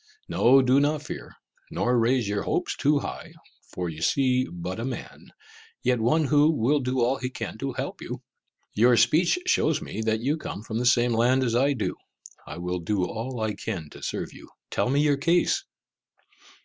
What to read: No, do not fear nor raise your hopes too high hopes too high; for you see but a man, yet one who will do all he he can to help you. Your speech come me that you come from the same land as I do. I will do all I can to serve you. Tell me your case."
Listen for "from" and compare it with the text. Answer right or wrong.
right